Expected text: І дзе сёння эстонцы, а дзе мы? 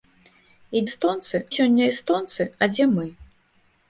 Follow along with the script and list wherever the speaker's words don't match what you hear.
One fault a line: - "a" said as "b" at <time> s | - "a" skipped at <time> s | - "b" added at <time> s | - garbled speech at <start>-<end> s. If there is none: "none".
- "дзе" said as "эстонцы" at 0.9 s